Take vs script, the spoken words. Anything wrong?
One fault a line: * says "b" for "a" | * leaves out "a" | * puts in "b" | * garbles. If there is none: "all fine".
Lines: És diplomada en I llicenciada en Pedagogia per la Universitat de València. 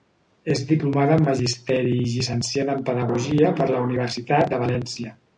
* puts in "Magisteri"